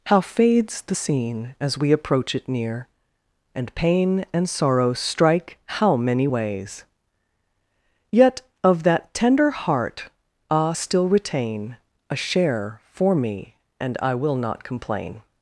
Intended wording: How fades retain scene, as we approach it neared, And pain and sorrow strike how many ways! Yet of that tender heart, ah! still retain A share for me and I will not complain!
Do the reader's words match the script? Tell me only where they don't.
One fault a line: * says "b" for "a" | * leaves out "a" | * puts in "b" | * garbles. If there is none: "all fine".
* says "the" for "retain"
* says "near" for "neared"